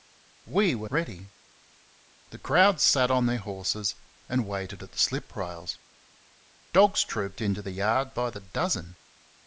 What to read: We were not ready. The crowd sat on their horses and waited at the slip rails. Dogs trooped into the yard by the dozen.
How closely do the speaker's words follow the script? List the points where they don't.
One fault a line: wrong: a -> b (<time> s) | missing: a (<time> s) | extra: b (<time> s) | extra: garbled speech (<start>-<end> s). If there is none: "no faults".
missing: not (0.9 s)